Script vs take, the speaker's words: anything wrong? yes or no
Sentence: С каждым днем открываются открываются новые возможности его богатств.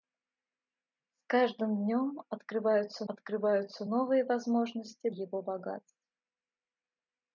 no